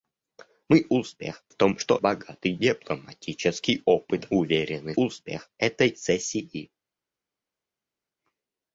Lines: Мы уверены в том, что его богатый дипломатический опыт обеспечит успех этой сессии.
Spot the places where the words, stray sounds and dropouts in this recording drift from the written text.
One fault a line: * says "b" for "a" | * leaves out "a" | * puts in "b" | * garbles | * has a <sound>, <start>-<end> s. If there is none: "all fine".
* says "успех" for "уверены"
* leaves out "его"
* says "уверены" for "обеспечит"